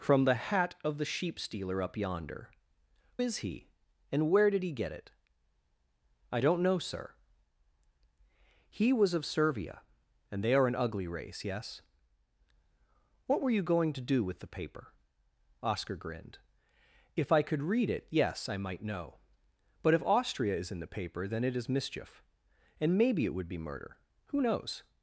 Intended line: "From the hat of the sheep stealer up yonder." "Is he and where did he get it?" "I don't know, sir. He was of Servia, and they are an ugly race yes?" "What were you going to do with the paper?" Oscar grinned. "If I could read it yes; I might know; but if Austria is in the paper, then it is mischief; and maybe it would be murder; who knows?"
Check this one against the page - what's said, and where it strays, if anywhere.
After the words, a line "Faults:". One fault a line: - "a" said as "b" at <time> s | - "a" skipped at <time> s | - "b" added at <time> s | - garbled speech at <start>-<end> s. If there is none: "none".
"From the hat of the sheep stealer up yonder." "Is he and where did he get it?" "I don't know, sir. He was of Servia, and they are an ugly race yes?" "What were you going to do with the paper?" Oscar grinned. "If I could read it yes; I might know; but if Austria is in the paper, then it is mischief; and maybe it would be murder; who knows?"
Faults:
none